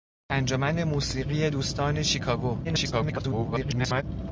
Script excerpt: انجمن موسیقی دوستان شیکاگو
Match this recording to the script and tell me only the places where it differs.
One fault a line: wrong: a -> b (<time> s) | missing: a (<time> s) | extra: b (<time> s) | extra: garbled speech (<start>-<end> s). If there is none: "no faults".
extra: garbled speech (2.6-4.0 s)